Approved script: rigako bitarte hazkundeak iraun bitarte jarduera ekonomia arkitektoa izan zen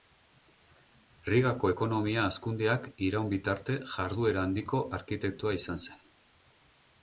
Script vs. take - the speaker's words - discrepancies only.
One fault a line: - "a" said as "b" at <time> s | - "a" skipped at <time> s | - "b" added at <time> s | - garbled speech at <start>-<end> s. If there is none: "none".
- "bitarte" said as "ekonomia" at 1.7 s
- "ekonomia" said as "handiko" at 4.5 s